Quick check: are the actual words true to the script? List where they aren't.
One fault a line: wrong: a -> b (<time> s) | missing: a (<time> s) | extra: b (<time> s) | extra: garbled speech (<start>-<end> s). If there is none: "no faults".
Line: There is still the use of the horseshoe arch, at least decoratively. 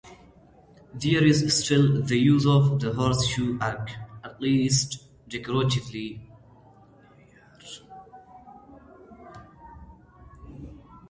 no faults